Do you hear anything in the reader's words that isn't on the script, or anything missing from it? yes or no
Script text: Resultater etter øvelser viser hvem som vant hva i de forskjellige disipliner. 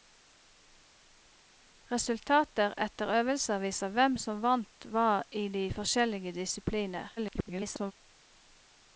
yes